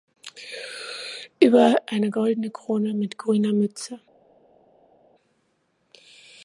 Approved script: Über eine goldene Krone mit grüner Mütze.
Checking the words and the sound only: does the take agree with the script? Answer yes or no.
yes